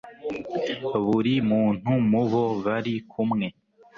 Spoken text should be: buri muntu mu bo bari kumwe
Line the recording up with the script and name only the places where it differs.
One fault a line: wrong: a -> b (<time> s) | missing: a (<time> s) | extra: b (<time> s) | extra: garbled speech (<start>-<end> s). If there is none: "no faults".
no faults